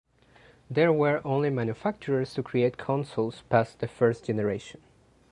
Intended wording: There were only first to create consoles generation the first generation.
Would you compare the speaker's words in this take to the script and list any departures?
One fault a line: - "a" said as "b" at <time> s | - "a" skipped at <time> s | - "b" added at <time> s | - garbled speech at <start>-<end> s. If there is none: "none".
- "first" said as "manufacturers" at 1.5 s
- "generation" said as "past" at 3.5 s